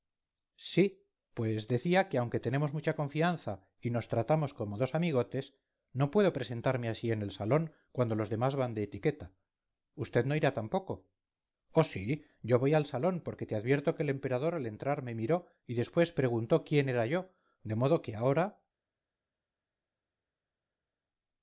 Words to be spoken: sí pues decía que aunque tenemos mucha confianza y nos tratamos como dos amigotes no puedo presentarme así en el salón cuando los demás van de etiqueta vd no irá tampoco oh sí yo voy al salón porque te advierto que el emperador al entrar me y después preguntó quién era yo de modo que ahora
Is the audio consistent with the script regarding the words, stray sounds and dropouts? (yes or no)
no